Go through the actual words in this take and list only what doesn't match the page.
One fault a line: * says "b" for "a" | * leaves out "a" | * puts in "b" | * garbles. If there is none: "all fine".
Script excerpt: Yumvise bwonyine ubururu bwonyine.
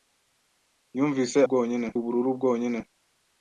all fine